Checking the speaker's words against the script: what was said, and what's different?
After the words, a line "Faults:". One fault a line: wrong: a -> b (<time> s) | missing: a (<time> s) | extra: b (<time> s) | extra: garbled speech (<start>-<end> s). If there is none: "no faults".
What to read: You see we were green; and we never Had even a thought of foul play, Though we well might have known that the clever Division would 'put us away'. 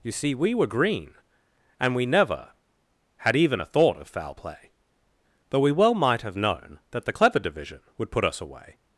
You see we were green; and we never Had even a thought of foul play, Though we well might have known that the clever Division would 'put us away'.
Faults:
no faults